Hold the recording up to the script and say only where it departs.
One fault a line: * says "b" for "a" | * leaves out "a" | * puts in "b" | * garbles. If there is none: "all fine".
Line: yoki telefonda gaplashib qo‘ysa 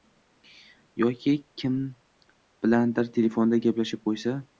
* puts in "kim bilandir"